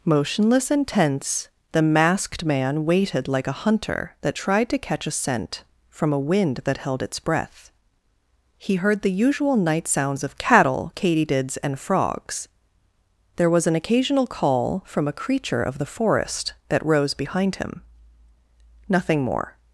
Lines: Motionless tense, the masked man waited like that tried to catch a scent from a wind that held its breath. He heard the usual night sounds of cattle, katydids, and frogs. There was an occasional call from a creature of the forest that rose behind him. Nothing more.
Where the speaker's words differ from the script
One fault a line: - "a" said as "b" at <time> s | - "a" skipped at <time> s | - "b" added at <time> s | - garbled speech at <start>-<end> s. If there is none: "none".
- "and" added at 0.7 s
- "a hunter" added at 3.5 s